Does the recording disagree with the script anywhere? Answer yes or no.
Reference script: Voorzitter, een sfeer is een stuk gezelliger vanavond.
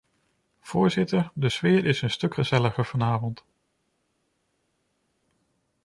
yes